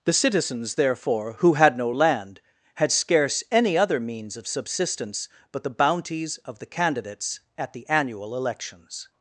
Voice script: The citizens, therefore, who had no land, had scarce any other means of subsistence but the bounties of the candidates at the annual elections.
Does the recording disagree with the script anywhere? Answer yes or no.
no